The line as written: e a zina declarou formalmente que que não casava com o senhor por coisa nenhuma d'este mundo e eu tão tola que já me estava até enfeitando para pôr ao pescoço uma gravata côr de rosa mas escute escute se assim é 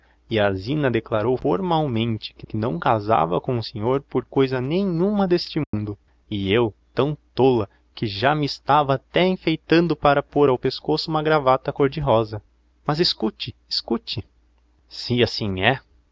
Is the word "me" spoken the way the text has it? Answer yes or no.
yes